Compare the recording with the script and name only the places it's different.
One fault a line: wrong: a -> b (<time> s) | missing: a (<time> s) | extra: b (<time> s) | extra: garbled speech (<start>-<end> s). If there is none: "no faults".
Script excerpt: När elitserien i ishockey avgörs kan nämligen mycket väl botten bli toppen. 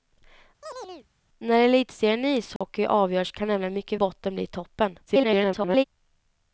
missing: väl (4.0 s)
extra: garbled speech (5.1-5.8 s)